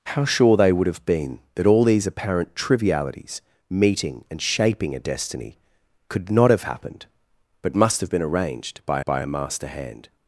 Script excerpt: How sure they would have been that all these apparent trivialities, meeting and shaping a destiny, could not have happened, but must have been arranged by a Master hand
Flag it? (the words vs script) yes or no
yes